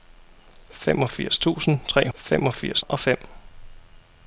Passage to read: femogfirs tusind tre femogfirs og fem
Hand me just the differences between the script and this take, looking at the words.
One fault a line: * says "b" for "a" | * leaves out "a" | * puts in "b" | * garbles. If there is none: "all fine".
all fine